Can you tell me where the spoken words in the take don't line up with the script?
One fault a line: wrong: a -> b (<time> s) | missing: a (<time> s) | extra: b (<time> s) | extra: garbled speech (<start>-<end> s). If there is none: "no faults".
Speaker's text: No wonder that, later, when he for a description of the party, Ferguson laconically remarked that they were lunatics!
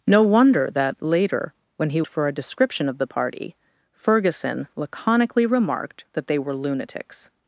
no faults